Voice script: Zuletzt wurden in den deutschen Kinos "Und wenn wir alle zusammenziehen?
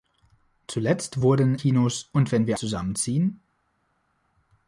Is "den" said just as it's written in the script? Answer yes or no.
no